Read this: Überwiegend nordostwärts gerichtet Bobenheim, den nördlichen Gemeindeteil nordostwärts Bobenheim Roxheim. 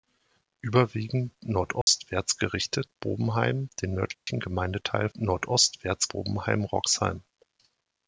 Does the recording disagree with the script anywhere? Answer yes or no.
no